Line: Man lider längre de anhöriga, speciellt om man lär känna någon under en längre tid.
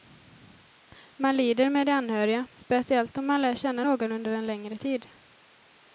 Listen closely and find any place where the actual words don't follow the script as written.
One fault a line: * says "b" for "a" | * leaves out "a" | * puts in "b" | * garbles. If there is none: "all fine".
* says "med" for "längre"